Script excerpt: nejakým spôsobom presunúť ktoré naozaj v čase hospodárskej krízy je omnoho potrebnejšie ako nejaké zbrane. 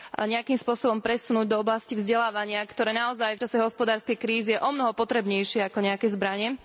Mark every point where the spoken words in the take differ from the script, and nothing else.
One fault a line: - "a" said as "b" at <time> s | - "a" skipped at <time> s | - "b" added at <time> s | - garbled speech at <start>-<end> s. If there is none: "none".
- "do oblasti vzdelávania" added at 1.5 s